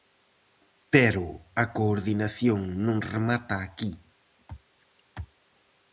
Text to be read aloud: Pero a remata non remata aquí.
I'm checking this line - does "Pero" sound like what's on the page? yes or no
yes